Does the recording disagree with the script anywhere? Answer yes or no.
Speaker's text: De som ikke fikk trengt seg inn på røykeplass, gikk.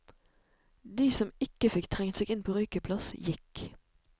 no